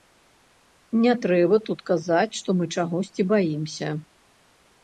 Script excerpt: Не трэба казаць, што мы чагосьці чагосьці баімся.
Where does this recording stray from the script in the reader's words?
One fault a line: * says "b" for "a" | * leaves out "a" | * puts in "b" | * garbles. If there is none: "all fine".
* puts in "тут"
* leaves out "чагосьці"